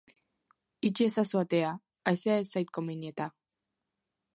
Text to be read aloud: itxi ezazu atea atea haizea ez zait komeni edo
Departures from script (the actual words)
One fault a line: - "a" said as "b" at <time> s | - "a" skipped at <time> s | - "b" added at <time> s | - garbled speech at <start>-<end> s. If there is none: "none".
- "atea" skipped at 1.8 s
- "edo" said as "eta" at 3.1 s